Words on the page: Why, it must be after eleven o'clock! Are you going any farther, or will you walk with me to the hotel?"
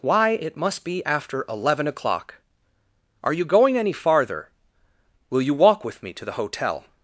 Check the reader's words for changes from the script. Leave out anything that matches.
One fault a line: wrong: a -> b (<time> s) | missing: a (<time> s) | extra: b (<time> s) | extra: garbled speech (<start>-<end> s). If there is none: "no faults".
missing: or (4.5 s)